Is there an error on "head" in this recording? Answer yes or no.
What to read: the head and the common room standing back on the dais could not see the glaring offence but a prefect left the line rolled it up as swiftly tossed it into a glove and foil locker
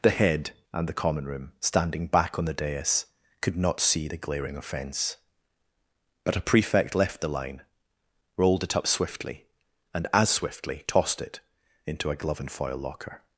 no